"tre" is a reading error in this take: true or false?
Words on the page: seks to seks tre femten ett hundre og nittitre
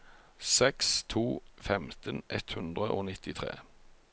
true